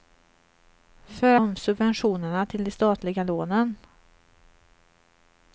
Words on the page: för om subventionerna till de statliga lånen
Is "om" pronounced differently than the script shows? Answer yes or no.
no